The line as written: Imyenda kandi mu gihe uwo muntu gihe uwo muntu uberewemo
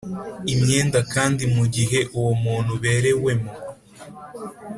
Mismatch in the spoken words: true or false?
true